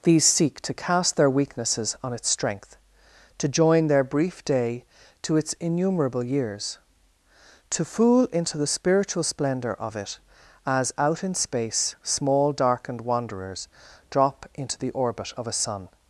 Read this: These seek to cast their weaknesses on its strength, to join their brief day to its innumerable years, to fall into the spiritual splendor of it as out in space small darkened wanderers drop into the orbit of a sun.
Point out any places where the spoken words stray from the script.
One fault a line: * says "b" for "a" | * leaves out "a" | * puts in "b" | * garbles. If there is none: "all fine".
* says "fool" for "fall"